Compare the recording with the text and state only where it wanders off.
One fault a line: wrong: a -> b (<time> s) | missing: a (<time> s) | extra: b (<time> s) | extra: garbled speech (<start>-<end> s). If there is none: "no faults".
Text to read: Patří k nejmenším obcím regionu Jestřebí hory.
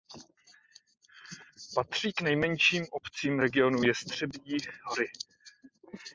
no faults